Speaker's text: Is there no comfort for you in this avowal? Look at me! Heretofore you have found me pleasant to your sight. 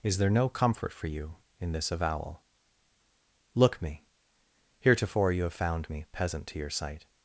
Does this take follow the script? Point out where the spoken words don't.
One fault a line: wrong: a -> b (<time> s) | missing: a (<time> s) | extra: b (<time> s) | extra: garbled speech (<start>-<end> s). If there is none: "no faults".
missing: at (3.8 s)
wrong: pleasant -> peasant (6.1 s)